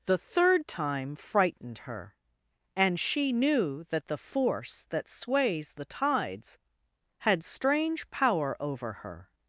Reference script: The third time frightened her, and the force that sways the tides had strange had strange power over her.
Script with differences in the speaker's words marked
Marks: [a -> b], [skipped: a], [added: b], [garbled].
The third time frightened her, and [added: she knew that] the force that sways the tides had strange [skipped: had strange] power over her.